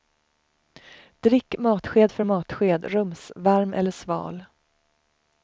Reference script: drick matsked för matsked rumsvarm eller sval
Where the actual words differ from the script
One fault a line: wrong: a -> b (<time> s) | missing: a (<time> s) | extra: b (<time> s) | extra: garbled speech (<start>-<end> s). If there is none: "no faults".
no faults